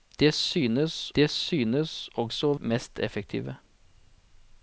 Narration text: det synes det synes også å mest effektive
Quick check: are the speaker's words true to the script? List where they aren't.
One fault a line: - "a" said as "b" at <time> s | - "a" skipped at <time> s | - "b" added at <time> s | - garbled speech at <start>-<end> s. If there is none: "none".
none